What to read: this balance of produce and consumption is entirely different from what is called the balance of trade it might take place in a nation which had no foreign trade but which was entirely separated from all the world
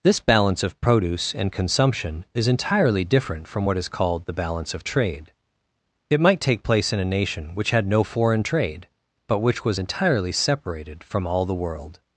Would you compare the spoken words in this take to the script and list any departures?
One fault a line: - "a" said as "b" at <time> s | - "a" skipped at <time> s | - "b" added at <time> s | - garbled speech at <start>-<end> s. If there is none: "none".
none